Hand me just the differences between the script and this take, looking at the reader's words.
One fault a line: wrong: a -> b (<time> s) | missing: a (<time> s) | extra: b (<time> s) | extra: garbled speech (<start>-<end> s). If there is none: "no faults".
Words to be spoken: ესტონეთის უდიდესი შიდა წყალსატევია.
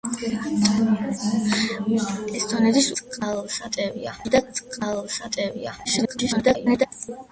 wrong: უდიდესი -> წყალსატევია (3.0 s)
extra: garbled speech (5.8-6.9 s)